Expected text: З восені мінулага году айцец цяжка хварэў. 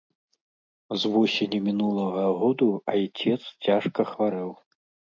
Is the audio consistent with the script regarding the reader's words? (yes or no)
yes